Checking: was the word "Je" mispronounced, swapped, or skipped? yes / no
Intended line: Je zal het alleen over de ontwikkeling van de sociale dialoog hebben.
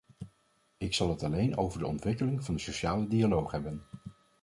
yes